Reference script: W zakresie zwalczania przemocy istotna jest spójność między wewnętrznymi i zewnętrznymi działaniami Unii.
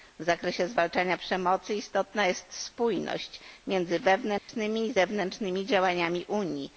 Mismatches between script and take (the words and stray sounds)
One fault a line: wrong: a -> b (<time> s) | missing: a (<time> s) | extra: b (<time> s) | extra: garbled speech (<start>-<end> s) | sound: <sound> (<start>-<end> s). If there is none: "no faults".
sound: dropout (4.4-4.5 s)